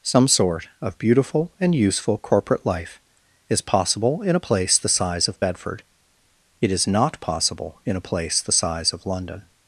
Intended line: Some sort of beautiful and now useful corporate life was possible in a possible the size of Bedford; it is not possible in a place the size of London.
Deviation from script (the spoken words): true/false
true